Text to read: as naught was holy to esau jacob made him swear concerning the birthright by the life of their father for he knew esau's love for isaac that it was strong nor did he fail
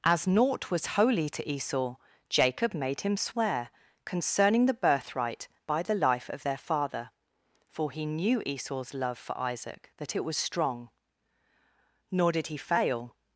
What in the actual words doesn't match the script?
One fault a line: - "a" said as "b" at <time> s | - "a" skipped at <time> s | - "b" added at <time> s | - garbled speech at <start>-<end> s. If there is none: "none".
none